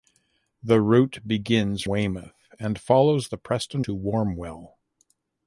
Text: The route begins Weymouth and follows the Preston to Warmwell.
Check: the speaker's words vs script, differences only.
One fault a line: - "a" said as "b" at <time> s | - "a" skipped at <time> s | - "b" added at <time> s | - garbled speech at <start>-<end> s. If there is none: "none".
none